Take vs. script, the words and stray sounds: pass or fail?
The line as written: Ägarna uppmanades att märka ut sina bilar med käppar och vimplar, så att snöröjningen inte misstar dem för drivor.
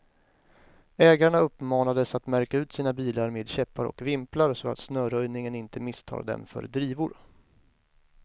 pass